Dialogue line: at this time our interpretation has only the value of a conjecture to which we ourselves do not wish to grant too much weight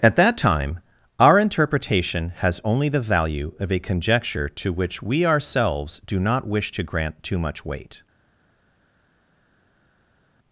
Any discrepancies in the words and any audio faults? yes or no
yes